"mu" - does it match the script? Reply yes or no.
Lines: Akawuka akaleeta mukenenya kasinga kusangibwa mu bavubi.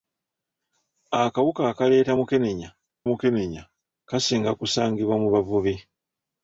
yes